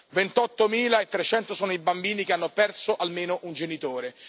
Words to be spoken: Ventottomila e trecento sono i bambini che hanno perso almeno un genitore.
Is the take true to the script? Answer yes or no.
yes